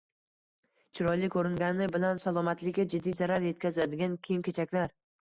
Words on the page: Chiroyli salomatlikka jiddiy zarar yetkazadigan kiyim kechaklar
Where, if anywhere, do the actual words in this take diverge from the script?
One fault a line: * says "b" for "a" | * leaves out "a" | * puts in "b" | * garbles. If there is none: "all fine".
* puts in "ko‘ringani bilan"